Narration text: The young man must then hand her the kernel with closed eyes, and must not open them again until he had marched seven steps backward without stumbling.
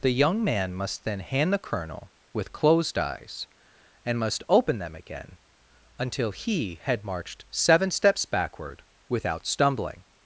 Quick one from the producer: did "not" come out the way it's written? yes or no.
no